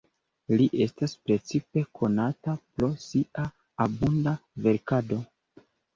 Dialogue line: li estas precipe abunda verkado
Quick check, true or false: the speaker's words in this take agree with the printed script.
false